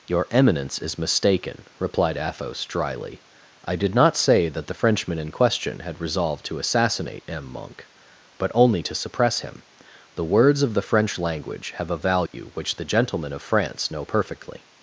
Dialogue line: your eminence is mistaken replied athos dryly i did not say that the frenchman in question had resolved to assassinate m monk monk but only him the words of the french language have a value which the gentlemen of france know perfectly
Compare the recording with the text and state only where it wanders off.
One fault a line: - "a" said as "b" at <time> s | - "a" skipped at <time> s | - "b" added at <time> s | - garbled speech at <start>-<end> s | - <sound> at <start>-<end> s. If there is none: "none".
- "monk" skipped at 7.9 s
- "to suppress" added at 8.8 s
- dropout at 12.3-12.3 s